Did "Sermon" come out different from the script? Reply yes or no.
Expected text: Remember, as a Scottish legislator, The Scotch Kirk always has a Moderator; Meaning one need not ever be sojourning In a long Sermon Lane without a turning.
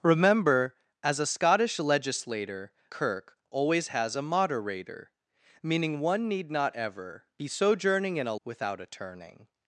yes